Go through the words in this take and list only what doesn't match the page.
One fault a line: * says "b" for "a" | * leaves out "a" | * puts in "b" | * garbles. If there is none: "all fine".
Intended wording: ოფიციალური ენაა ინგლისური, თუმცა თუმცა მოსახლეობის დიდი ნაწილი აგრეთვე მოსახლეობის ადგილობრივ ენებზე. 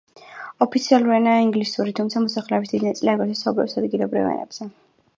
* leaves out "თუმცა"
* says "საუბრობს" for "მოსახლეობის"